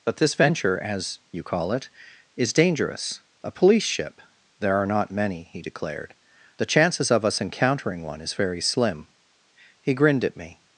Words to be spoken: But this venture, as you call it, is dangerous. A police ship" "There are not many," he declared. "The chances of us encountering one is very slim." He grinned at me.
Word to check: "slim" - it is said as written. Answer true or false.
true